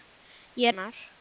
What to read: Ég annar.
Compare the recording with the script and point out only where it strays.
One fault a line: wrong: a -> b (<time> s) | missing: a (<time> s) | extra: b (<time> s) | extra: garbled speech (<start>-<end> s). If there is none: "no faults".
no faults